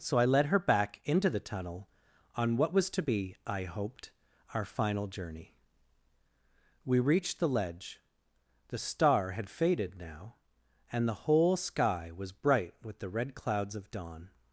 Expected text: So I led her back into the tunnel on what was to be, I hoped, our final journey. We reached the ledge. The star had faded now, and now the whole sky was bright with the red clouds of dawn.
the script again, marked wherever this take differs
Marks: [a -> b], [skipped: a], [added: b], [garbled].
So I led her back into the tunnel on what was to be, I hoped, our final journey. We reached the ledge. The star had faded now, and [skipped: now] the whole sky was bright with the red clouds of dawn.